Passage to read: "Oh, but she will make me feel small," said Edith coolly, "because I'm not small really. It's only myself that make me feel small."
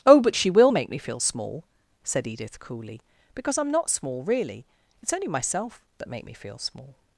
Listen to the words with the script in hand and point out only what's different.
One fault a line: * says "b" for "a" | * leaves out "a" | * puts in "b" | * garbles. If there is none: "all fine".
all fine